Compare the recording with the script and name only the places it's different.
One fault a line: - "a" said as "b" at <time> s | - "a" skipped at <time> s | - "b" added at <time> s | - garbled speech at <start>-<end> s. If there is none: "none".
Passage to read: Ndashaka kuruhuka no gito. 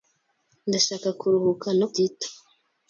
none